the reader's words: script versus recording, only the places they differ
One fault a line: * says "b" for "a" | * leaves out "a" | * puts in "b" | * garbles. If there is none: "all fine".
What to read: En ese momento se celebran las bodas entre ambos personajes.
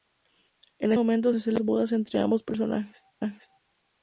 * leaves out "ese"